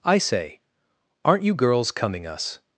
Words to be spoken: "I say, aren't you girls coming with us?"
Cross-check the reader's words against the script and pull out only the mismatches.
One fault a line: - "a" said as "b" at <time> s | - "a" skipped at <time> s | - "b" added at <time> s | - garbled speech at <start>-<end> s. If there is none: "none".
- "with" skipped at 2.2 s